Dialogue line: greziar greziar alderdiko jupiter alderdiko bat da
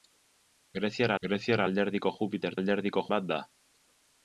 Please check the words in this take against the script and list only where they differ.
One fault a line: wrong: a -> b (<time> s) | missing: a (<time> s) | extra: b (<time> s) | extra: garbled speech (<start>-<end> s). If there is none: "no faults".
no faults